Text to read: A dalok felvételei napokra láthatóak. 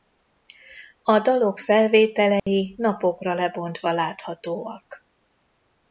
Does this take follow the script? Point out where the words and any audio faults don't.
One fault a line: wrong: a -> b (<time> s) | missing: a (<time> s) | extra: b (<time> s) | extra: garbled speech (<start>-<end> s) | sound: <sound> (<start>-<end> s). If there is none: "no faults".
sound: dropout (2.4-2.5 s)
extra: lebontva (3.3 s)